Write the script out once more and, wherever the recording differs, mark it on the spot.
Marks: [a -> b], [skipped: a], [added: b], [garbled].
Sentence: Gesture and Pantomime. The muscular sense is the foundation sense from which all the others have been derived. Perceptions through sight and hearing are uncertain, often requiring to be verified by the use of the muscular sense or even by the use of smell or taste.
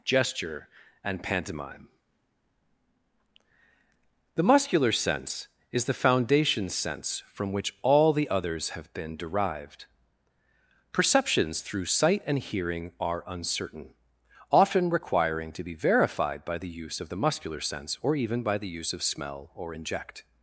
Gesture and Pantomime. The muscular sense is the foundation sense from which all the others have been derived. Perceptions through sight and hearing are uncertain, often requiring to be verified by the use of the muscular sense or even by the use of smell or [taste. -> inject]